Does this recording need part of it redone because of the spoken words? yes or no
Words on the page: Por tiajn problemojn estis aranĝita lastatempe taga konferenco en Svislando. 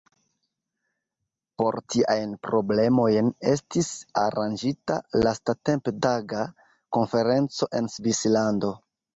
no